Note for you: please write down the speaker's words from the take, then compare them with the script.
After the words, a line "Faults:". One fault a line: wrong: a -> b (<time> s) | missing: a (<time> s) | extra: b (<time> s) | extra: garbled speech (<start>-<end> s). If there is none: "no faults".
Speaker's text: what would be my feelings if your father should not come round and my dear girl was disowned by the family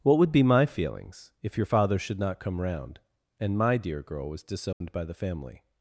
what would be my feelings if your father should not come round and my dear girl was disowned by the family
Faults:
no faults